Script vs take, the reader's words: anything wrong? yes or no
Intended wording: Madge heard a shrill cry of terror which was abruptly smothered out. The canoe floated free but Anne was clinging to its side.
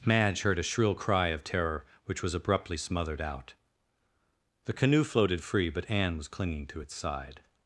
no